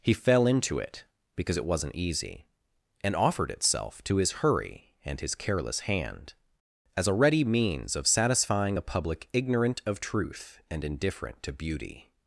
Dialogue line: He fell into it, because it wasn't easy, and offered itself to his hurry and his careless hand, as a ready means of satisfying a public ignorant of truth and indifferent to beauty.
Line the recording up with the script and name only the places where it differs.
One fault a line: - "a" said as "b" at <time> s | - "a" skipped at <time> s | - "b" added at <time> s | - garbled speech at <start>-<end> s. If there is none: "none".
none